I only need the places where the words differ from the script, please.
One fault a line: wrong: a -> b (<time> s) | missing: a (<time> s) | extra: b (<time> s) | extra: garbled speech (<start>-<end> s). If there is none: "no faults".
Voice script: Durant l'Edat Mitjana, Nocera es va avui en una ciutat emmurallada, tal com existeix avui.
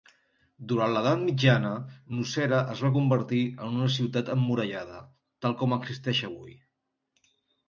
wrong: avui -> convertir (3.0 s)